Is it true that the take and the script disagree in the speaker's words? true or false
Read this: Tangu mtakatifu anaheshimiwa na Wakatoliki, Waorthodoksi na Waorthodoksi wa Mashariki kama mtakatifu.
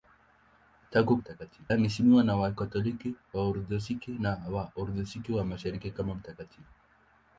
false